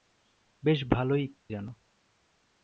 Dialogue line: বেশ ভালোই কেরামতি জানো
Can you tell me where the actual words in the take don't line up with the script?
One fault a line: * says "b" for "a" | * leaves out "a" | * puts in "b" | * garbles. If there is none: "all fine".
* leaves out "কেরামতি"